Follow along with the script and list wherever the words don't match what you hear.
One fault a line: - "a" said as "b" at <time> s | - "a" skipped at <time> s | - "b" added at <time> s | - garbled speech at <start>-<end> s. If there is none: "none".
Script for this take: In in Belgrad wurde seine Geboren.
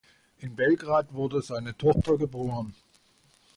- "in" skipped at 0.6 s
- "Tochter" added at 1.8 s